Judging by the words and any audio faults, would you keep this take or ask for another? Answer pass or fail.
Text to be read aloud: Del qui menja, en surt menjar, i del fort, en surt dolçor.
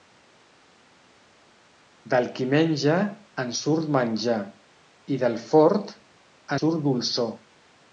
fail